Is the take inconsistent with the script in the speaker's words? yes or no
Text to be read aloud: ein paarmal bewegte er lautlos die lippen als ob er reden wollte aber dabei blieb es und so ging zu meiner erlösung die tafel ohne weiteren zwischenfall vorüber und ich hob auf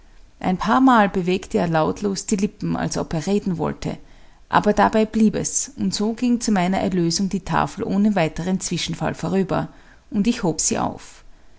yes